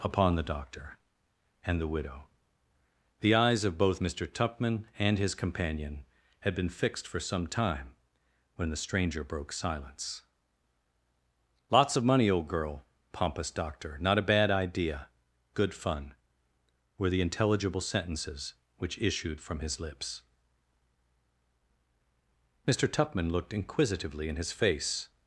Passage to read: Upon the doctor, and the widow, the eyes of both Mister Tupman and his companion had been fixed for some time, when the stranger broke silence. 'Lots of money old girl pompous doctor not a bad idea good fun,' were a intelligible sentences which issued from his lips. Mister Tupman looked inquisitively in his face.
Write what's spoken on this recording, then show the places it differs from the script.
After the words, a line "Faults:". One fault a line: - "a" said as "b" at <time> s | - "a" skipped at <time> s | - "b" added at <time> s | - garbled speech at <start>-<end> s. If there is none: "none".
Upon the doctor, and the widow, the eyes of both Mister Tupman and his companion had been fixed for some time, when the stranger broke silence. 'Lots of money old girl pompous doctor not a bad idea good fun,' were the intelligible sentences which issued from his lips. Mister Tupman looked inquisitively in his face.
Faults:
- "a" said as "the" at 17.1 s